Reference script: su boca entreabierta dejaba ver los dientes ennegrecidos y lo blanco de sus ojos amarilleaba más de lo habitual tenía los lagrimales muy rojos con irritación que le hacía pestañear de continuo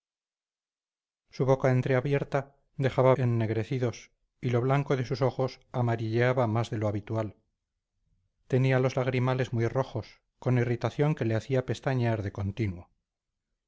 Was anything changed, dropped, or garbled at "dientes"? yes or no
yes